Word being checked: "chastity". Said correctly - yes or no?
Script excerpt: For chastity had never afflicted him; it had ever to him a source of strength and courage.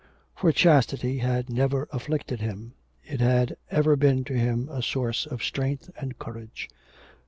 yes